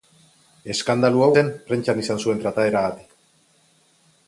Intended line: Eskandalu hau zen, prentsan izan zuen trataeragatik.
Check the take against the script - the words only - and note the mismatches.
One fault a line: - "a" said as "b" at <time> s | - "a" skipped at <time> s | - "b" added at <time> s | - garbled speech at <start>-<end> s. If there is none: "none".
none